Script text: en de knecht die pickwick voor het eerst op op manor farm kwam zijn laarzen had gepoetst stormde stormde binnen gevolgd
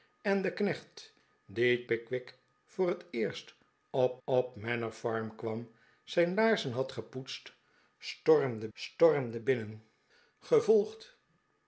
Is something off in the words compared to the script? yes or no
no